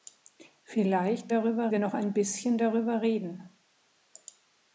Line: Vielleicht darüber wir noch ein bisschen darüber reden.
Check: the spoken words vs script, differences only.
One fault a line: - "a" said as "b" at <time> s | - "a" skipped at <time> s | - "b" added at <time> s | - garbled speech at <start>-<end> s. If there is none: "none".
none